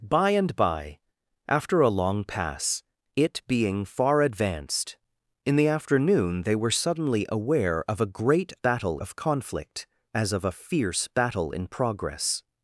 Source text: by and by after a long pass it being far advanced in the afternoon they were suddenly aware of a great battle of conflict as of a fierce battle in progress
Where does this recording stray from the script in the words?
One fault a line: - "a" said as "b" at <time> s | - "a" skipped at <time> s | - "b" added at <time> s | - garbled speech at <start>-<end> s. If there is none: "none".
none